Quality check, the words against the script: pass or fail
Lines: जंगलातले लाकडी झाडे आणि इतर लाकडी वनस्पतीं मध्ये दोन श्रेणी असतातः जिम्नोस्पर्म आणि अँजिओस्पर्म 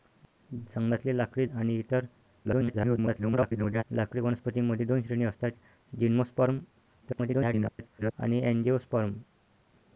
fail